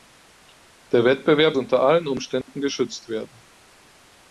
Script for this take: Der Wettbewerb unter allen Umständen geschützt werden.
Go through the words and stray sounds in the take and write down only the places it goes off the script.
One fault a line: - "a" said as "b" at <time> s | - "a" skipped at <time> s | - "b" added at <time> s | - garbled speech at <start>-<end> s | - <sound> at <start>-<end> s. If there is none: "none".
- dropout at 2.4-2.5 s